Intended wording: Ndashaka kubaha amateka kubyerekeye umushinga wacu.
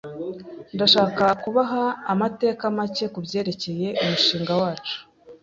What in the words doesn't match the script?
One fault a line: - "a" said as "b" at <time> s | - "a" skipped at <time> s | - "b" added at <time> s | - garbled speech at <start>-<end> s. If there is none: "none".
- "make" added at 2.8 s